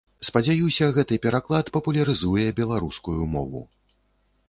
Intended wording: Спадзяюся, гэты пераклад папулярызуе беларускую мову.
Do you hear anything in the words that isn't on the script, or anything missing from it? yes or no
no